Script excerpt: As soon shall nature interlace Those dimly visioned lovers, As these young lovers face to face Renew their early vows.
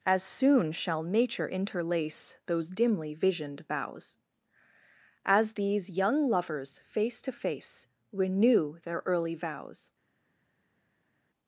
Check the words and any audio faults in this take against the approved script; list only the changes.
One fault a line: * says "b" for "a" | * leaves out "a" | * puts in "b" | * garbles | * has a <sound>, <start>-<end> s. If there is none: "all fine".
* says "boughs" for "lovers"